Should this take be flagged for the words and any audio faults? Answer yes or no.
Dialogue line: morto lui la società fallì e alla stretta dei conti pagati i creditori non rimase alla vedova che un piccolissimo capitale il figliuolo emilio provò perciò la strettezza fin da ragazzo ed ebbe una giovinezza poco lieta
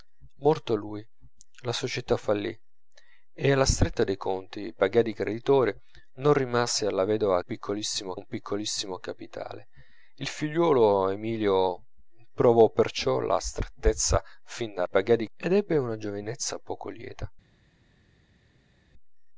yes